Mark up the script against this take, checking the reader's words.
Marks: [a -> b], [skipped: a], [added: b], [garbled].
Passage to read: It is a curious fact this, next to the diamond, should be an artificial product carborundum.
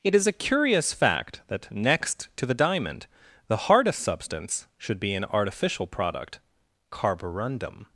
It is a curious fact [this, -> that] next to the diamond, [added: the hardest substance] should be an artificial product carborundum.